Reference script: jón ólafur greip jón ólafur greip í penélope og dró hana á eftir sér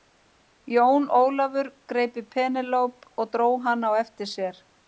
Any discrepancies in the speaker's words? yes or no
yes